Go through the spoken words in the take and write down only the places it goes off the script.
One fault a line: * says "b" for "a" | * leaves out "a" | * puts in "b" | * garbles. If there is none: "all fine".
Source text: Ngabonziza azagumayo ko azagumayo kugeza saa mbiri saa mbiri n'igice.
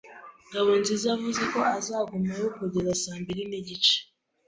* says "yavuze" for "azagumayo"
* leaves out "saa mbiri"